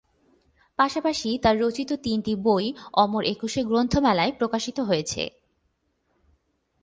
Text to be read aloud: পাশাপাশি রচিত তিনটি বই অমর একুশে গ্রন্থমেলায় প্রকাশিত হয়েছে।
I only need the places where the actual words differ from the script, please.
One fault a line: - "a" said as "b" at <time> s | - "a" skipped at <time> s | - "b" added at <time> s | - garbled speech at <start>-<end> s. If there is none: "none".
- "তার" added at 1.4 s